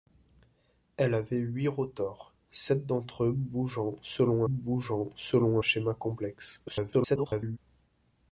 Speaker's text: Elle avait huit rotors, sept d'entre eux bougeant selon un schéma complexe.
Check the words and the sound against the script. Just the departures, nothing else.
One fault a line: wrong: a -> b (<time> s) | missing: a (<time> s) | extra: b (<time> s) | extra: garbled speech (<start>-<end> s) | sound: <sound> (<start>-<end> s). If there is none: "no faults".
extra: bougeant selon (4.5 s)
extra: garbled speech (6.7-7.6 s)